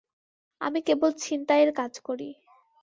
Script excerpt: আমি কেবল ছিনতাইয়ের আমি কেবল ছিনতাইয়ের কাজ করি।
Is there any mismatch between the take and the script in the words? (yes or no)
yes